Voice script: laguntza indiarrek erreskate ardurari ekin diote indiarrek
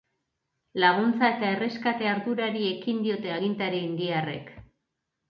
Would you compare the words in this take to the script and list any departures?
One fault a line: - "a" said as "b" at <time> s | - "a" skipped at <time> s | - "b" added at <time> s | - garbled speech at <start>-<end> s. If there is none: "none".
- "indiarrek" said as "eta" at 1.3 s
- "agintari" added at 3.3 s